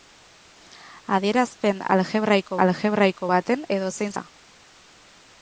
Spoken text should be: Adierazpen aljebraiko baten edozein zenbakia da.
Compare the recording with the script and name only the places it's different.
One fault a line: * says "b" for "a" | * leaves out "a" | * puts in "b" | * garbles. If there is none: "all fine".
* puts in "aljebraiko"
* leaves out "zenbakia"